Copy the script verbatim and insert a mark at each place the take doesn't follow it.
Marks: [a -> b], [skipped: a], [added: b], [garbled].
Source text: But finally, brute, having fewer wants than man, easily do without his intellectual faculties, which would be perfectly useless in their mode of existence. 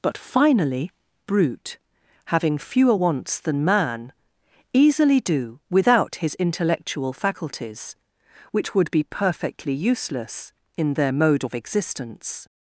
But finally, brute, having fewer wants than man, easily do without his intellectual faculties, which would be perfectly useless in their mode of existence.